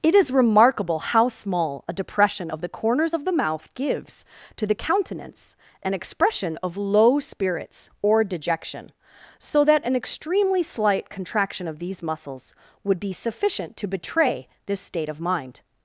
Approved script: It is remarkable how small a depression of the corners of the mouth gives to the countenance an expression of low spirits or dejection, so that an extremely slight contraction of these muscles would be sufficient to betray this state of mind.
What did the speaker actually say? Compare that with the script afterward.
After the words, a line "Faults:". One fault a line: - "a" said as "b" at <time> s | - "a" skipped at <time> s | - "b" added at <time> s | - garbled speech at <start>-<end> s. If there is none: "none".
It is remarkable how small a depression of the corners of the mouth gives to the countenance an expression of low spirits or dejection, so that an extremely slight contraction of these muscles would be sufficient to betray this state of mind.
Faults:
none